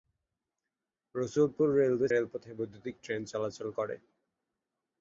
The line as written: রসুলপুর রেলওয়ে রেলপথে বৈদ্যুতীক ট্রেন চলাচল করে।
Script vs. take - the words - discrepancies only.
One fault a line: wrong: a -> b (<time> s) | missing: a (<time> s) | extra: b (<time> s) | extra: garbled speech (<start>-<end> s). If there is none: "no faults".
no faults